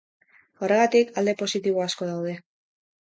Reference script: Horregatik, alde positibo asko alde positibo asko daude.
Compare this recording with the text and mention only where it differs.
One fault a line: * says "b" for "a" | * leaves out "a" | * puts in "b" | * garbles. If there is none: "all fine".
* leaves out "alde positibo asko"